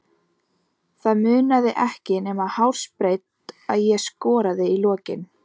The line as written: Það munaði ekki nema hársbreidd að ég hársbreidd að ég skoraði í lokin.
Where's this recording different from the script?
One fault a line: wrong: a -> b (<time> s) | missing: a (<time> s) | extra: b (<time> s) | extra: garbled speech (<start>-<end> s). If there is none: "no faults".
missing: hársbreidd að ég (4.0 s)